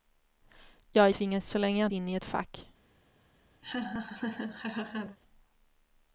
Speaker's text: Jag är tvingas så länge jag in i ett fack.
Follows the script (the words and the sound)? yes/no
no